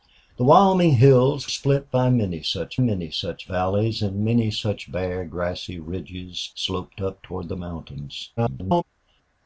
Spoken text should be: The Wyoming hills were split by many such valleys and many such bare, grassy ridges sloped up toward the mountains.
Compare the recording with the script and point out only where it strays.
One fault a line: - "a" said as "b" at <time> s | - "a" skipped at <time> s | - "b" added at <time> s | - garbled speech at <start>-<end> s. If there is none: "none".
- "were" skipped at 1.5 s
- "many such" added at 2.8 s
- garbled speech at 8.4-8.8 s